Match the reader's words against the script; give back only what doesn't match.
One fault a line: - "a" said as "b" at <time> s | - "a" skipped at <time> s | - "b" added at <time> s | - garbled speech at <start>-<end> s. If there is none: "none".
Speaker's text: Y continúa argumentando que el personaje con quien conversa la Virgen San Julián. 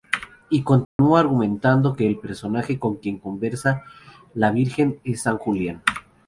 - "es" added at 5.0 s